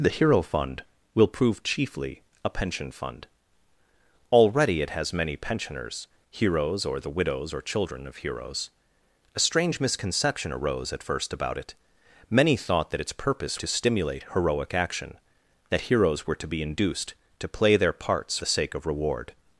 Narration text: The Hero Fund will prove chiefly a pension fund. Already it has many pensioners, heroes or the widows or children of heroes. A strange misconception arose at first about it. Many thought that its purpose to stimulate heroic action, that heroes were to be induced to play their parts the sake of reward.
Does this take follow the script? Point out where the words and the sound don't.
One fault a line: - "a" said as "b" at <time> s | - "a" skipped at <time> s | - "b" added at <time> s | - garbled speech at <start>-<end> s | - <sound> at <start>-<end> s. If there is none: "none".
none